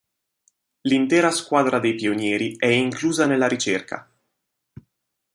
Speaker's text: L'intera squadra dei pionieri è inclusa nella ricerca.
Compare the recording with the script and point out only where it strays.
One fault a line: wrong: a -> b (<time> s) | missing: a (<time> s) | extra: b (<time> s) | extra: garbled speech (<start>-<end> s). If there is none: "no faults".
no faults